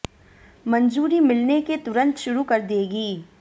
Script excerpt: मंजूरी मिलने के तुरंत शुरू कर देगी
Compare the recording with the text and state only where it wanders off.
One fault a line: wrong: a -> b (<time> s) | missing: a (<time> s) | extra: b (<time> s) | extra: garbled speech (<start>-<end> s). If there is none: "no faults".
no faults